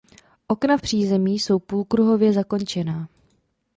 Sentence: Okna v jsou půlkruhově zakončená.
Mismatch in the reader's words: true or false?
true